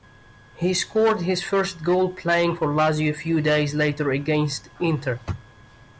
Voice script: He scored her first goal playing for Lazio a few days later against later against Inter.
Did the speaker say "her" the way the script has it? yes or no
no